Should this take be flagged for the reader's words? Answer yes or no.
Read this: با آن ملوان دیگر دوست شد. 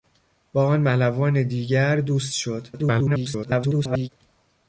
yes